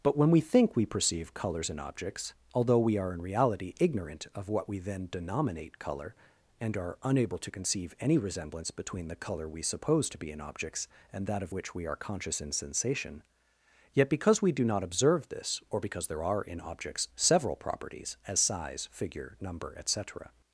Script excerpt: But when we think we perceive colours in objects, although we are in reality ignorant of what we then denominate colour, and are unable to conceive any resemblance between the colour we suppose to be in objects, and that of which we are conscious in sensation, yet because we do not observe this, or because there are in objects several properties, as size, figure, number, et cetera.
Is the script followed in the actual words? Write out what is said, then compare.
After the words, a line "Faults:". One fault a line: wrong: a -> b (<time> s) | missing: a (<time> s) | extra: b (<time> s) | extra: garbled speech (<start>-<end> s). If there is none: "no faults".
But when we think we perceive colours in objects, although we are in reality ignorant of what we then denominate colour, and are unable to conceive any resemblance between the colour we suppose to be in objects, and that of which we are conscious in sensation, yet because we do not observe this, or because there are in objects several properties, as size, figure, number, et cetera.
Faults:
no faults